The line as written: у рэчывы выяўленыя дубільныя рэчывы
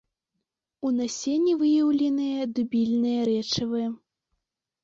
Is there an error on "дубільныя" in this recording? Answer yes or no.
no